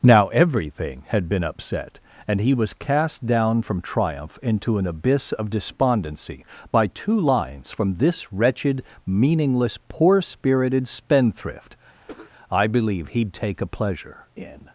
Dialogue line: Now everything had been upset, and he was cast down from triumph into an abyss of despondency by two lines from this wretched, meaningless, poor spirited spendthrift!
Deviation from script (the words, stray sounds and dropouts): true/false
true